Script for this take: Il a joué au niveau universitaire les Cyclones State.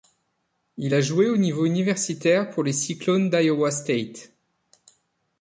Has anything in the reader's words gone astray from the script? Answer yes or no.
yes